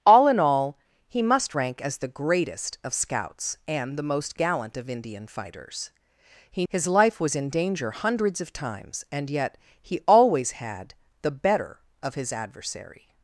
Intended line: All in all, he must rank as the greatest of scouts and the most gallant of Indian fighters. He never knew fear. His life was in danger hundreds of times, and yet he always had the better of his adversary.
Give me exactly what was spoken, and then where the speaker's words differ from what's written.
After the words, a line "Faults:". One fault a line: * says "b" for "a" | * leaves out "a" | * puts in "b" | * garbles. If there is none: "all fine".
All in all, he must rank as the greatest of scouts and the most gallant of Indian fighters. He. His life was in danger hundreds of times, and yet he always had the better of his adversary.
Faults:
* leaves out "never knew fear"